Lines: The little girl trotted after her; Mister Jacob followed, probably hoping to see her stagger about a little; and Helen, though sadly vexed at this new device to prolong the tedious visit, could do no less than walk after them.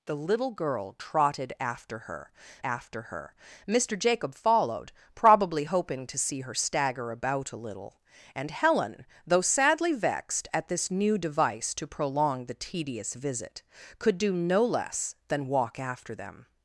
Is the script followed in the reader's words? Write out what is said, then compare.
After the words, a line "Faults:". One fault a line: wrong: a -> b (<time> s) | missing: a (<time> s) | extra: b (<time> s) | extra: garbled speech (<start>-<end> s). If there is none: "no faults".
The little girl trotted after her after her; Mister Jacob followed, probably hoping to see her stagger about a little; and Helen, though sadly vexed at this new device to prolong the tedious visit, could do no less than walk after them.
Faults:
extra: after her (2.6 s)